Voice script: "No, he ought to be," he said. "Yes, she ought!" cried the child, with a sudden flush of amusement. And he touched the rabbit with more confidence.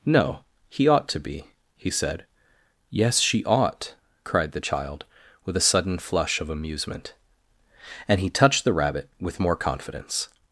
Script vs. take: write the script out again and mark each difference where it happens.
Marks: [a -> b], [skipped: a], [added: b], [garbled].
"No, he ought to be," he said. "Yes, she ought!" cried the child, with a sudden flush of amusement. And he touched the rabbit with more confidence.